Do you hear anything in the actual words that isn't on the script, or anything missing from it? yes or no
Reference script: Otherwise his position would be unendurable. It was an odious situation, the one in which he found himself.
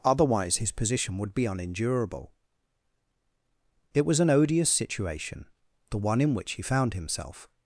no